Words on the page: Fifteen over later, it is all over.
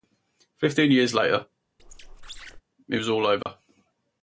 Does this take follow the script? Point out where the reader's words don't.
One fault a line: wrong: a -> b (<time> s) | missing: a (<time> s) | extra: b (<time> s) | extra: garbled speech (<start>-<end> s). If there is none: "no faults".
wrong: over -> years (0.9 s)
wrong: is -> was (2.9 s)